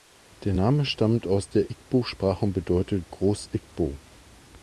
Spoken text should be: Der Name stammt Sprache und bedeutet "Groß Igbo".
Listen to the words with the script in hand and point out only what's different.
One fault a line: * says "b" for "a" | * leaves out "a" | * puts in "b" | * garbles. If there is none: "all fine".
* puts in "aus der Igbo"